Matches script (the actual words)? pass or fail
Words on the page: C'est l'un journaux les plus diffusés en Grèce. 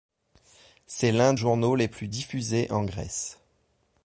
pass